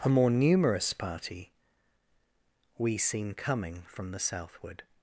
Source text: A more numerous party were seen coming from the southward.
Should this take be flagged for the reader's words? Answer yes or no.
yes